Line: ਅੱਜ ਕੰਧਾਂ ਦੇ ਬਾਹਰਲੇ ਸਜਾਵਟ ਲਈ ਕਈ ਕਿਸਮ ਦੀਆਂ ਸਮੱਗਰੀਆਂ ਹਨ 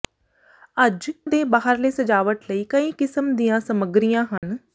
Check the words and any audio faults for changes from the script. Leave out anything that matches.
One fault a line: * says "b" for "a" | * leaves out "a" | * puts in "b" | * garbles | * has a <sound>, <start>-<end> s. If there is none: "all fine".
* leaves out "ਕੰਧਾਂ"
* has a dropout, 4.4-4.4 s